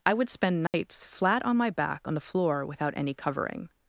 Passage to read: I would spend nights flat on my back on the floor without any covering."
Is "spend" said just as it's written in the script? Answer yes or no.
yes